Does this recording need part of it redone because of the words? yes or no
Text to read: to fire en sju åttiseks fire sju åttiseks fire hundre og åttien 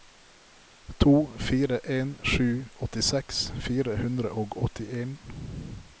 yes